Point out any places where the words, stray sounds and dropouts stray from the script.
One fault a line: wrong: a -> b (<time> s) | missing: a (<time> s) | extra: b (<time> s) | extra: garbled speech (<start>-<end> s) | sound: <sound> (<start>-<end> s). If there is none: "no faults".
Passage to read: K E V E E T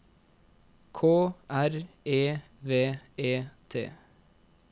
extra: R (1.5 s)
missing: E (3.4 s)